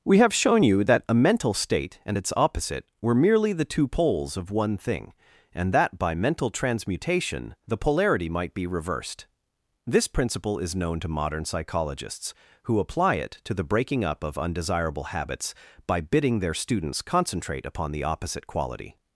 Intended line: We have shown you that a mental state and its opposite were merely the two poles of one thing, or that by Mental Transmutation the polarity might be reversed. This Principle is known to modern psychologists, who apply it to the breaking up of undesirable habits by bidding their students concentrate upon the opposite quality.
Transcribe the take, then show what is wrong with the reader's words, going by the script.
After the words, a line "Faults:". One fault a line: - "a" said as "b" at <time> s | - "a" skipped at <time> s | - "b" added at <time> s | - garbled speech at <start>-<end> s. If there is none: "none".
We have shown you that a mental state and its opposite were merely the two poles of one thing, and that by Mental Transmutation the polarity might be reversed. This Principle is known to modern psychologists, who apply it to the breaking up of undesirable habits by bidding their students concentrate upon the opposite quality.
Faults:
- "or" said as "and" at 5.5 s